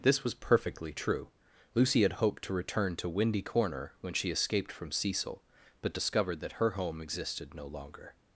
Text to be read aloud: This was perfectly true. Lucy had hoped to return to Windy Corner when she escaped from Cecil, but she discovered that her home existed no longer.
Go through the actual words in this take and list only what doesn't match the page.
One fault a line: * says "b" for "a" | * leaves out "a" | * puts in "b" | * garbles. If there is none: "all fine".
* leaves out "she"